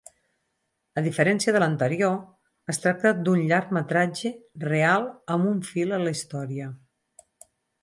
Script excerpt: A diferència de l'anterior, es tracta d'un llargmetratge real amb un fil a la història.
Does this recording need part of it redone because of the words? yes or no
no